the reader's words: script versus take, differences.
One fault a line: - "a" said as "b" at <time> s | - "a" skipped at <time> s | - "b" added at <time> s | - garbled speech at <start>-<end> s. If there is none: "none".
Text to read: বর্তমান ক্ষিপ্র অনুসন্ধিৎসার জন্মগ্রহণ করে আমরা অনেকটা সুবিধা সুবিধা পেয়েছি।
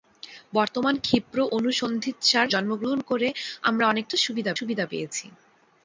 none